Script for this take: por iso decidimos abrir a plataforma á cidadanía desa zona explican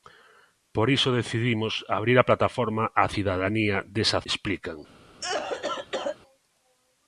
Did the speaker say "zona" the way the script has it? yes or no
no